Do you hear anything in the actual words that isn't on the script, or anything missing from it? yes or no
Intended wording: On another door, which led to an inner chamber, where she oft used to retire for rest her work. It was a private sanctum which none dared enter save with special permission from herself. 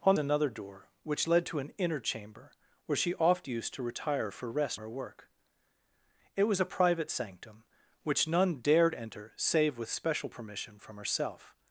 no